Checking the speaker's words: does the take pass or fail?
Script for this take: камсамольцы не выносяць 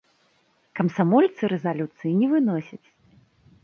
fail